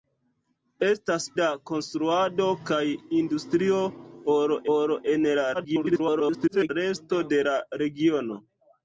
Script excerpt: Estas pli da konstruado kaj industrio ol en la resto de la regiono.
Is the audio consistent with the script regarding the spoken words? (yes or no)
no